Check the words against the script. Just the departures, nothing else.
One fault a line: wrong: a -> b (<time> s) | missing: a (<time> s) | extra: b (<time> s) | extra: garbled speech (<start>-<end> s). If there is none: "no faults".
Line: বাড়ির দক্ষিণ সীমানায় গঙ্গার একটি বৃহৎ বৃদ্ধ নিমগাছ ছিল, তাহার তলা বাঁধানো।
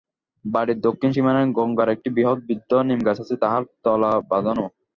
wrong: ছিল -> আছে (3.2 s)